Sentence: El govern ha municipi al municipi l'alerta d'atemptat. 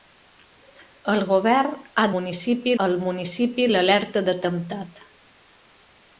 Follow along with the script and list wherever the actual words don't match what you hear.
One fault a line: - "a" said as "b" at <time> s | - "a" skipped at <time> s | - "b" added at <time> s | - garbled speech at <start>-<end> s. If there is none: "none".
none